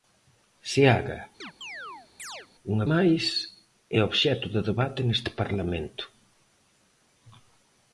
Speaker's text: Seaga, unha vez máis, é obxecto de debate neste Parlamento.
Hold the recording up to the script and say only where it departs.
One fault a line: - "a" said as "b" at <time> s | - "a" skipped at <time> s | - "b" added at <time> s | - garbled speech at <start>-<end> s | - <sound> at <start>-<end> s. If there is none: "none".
- chirp at 1.4-2.5 s
- "vez" skipped at 2.8 s